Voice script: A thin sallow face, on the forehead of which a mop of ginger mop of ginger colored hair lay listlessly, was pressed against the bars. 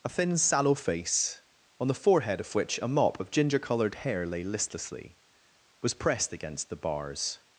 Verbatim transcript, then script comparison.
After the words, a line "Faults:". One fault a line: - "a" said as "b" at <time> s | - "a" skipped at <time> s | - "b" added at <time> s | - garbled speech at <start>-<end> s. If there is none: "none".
A thin sallow face, on the forehead of which a mop of ginger colored hair lay listlessly, was pressed against the bars.
Faults:
- "mop of ginger" skipped at 3.6 s